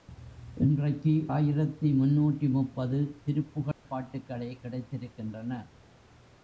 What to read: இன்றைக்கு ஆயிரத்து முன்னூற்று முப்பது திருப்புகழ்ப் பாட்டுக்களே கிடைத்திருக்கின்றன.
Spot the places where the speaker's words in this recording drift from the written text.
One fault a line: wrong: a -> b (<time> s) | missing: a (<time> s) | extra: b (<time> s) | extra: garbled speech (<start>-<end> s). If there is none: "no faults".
no faults